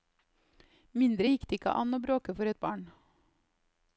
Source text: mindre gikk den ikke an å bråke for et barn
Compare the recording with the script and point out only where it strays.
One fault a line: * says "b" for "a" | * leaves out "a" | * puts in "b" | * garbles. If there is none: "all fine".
* says "det" for "den"